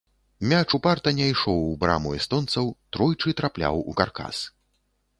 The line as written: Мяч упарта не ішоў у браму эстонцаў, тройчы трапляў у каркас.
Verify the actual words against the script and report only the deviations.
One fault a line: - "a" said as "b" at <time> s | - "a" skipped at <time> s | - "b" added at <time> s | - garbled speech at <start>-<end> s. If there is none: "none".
none